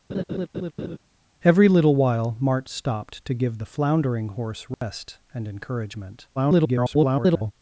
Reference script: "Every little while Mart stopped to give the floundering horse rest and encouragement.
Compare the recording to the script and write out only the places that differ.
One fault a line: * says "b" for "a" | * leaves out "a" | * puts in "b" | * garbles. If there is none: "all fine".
* garbles